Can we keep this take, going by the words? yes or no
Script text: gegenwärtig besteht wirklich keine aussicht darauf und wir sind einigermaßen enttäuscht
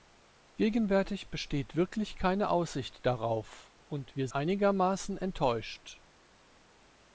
no